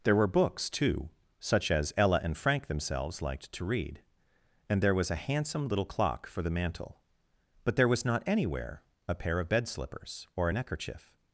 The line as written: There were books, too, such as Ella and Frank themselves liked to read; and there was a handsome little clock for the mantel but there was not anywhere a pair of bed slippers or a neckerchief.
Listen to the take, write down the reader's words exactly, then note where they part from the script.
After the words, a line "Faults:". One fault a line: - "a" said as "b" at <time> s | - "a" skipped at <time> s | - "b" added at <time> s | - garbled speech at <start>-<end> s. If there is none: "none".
There were books, too, such as Ella and Frank themselves liked to read; and there was a handsome little clock for the mantel but there was not anywhere a pair of bed slippers or a neckerchief.
Faults:
none